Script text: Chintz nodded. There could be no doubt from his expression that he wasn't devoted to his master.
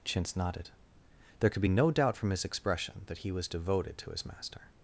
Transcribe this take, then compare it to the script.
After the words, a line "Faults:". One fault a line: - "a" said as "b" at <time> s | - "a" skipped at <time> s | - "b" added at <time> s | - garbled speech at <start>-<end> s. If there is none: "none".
Chintz nodded. There could be no doubt from his expression that he was devoted to his master.
Faults:
- "wasn't" said as "was" at 3.3 s